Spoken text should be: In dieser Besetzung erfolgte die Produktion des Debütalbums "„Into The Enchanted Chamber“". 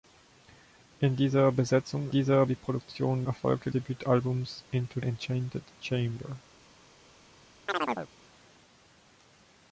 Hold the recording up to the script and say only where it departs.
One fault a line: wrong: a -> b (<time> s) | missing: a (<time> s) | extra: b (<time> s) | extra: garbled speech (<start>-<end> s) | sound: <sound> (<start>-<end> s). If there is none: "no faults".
wrong: erfolgte -> dieser (2.1 s)
wrong: des -> erfolgte (3.2 s)
missing: The (5.0 s)
sound: chirp (7.7-8.1 s)